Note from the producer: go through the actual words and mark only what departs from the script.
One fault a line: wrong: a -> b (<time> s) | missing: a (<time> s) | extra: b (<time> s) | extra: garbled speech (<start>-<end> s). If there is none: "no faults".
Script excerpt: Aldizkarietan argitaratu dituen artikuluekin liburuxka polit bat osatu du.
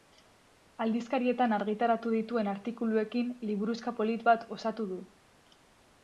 no faults